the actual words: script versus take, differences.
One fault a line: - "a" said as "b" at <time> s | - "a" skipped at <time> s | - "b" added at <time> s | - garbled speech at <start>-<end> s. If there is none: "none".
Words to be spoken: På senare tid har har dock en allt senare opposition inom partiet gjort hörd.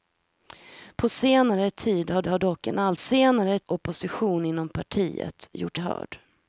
none